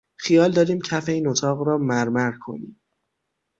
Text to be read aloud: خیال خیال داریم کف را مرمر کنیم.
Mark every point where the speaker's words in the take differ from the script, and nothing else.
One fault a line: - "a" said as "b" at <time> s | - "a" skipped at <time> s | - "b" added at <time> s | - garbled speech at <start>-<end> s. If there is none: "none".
- "خیال" skipped at 0.5 s
- "این اتاق" added at 1.1 s